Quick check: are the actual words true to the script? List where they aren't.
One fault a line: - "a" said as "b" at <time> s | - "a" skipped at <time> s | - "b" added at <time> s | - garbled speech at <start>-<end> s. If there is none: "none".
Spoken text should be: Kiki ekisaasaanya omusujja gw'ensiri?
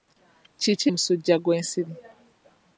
- "ekisaasaanya" skipped at 0.9 s